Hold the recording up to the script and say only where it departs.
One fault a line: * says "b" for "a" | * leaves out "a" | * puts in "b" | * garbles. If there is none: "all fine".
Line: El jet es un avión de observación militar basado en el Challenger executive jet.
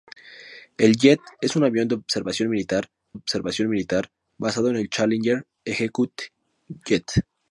* puts in "observación militar"